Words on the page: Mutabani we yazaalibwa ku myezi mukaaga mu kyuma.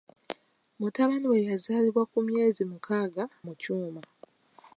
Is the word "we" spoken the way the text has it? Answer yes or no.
yes